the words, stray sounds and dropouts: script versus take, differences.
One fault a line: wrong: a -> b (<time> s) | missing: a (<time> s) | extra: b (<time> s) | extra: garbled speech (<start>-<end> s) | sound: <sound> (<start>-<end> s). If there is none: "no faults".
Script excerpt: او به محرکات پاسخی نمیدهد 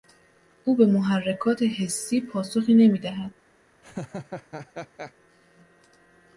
extra: حسی (1.6 s)
sound: laugh (3.8-5.1 s)